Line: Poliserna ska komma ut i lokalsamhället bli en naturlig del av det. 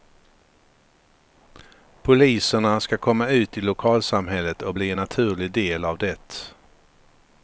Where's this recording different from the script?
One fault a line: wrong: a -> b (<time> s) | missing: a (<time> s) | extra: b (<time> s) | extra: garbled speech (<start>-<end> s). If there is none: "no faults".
extra: och (4.6 s)